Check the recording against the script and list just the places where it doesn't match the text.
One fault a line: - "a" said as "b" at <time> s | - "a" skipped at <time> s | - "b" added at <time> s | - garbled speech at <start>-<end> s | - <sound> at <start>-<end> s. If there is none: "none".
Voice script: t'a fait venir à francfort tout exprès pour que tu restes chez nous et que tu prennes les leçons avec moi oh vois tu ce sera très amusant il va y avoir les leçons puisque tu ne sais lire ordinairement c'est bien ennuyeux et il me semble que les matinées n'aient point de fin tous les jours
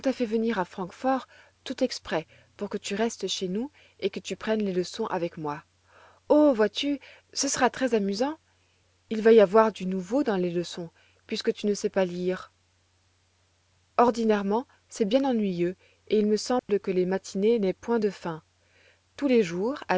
- "du nouveau dans" added at 9.7 s
- "pas" added at 11.9 s
- dropout at 16.6-16.7 s